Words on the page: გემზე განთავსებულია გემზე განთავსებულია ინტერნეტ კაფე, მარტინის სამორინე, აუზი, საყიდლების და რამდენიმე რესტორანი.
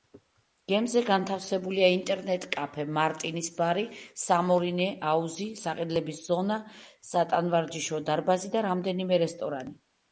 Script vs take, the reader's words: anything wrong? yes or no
yes